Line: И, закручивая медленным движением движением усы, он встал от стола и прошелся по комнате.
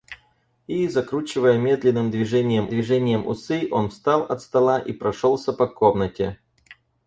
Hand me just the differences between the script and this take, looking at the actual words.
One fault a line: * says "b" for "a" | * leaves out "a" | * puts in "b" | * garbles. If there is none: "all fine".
all fine